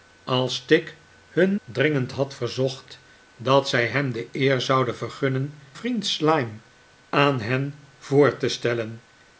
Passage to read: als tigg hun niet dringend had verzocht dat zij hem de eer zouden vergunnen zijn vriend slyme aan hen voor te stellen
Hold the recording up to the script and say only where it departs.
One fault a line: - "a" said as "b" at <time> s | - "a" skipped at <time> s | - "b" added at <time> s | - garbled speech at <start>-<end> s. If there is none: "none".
- "niet" skipped at 1.6 s
- "zijn" skipped at 5.6 s